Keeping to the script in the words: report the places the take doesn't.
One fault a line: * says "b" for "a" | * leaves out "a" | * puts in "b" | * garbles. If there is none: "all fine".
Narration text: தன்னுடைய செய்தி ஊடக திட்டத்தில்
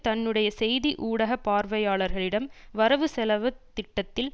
* puts in "பார்வையாளர்களிடம் வரவு செலவு"